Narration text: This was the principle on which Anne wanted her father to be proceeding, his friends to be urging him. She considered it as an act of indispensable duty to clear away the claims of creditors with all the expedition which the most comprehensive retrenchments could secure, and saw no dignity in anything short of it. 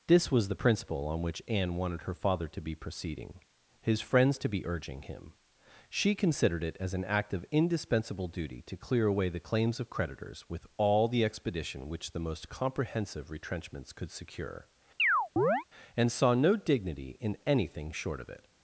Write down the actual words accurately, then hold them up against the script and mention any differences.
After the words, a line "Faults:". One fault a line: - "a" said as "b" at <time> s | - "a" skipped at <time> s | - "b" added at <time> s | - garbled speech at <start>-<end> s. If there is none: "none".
This was the principle on which Anne wanted her father to be proceeding, his friends to be urging him. She considered it as an act of indispensable duty to clear away the claims of creditors with all the expedition which the most comprehensive retrenchments could secure, and saw no dignity in anything short of it.
Faults:
none